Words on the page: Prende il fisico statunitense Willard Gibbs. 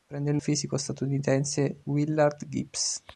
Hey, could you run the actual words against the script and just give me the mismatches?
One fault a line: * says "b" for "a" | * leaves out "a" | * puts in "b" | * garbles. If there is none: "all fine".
all fine